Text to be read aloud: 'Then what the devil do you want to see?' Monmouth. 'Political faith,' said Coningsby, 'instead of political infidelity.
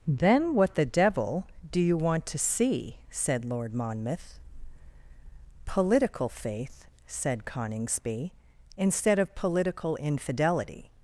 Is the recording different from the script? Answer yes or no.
yes